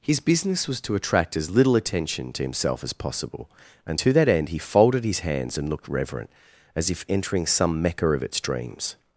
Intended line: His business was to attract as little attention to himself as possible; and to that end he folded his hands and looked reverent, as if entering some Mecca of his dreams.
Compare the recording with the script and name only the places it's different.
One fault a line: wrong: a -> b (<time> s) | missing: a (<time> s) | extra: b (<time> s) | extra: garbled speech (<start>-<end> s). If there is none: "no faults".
wrong: his -> its (8.2 s)